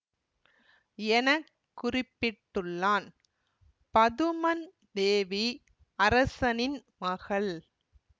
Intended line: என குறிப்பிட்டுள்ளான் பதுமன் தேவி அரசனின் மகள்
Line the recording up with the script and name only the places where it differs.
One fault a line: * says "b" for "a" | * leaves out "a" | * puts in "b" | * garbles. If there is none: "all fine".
all fine